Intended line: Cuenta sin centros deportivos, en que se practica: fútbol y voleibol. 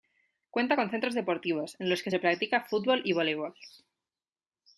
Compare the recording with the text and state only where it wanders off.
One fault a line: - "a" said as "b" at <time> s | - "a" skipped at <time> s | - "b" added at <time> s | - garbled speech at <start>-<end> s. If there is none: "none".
- "sin" said as "con" at 0.8 s
- "los" added at 1.9 s